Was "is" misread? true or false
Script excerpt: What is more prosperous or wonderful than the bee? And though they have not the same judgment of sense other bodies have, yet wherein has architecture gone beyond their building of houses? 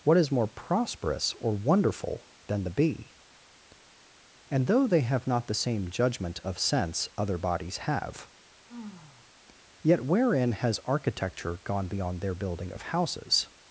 false